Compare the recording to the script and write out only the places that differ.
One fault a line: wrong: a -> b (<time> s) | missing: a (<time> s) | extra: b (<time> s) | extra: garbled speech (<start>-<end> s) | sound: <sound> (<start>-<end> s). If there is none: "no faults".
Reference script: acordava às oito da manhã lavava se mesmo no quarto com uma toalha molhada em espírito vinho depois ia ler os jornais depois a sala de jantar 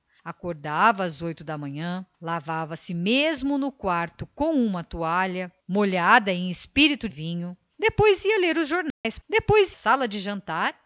sound: dropout (8.9-9.0 s)